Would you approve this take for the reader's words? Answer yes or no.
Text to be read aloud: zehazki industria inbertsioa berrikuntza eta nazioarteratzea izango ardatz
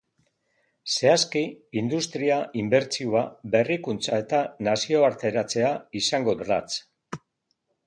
yes